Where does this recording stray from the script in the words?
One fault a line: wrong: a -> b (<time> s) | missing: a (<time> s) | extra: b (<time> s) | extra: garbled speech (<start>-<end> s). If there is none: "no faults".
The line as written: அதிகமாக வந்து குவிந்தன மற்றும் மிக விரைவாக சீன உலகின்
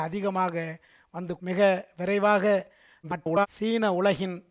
missing: குவிந்தன மற்றும் (1.3 s)
extra: garbled speech (3.0-3.5 s)